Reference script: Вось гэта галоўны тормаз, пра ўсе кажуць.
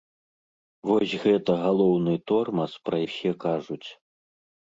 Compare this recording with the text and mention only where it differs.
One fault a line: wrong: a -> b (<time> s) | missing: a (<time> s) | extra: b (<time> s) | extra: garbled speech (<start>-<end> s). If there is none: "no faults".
no faults